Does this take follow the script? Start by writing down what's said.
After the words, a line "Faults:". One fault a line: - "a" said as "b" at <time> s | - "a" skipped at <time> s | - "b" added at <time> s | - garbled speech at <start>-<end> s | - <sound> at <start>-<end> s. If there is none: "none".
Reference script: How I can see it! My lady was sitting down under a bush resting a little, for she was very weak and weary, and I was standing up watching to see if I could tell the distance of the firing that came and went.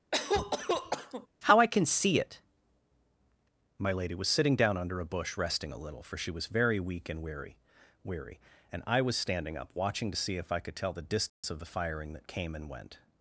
How I can see it! My lady was sitting down under a bush resting a little, for she was very weak and weary weary, and I was standing up watching to see if I could tell the distance of the firing that came and went.
Faults:
- cough at 0.1-1.3 s
- "weary" added at 8.0 s
- dropout at 11.3-11.4 s